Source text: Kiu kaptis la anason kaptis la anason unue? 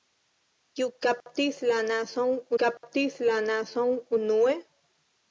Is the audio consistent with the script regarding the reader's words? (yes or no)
yes